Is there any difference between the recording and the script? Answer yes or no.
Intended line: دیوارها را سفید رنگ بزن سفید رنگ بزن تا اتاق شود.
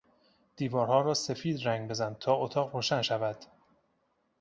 yes